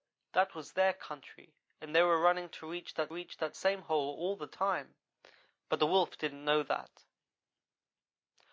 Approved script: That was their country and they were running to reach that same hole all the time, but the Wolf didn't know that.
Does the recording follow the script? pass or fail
fail